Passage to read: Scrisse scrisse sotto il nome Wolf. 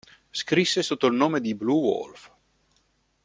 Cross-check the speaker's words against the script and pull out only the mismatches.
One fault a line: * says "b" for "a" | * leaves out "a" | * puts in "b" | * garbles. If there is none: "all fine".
* leaves out "scrisse"
* puts in "di Blue"